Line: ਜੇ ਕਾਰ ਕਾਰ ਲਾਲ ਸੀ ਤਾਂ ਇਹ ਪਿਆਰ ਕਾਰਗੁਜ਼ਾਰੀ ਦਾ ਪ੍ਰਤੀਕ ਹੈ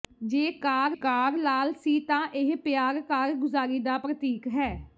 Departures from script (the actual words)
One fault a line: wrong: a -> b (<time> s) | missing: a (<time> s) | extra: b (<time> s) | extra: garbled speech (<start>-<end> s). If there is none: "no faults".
no faults